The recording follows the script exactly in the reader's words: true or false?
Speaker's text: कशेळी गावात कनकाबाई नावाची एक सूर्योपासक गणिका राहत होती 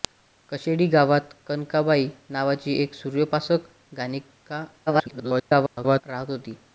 false